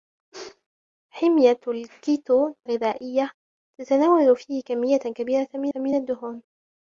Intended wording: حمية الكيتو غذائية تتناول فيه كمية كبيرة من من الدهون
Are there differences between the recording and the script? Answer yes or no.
no